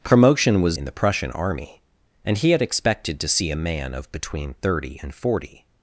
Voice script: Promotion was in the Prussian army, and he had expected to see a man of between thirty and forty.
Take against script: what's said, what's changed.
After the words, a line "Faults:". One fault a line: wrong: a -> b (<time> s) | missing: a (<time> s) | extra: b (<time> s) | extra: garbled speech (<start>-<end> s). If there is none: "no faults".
Promotion was in the Prussian army, and he had expected to see a man of between thirty and forty.
Faults:
no faults